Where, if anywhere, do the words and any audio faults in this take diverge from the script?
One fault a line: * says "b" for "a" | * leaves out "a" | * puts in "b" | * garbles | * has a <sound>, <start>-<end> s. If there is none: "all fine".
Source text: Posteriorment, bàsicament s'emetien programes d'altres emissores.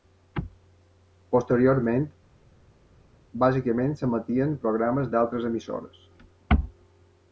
all fine